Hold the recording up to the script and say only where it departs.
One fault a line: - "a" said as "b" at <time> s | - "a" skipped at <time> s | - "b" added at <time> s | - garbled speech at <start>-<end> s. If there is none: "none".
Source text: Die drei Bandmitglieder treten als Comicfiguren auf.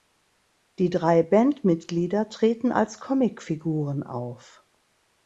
none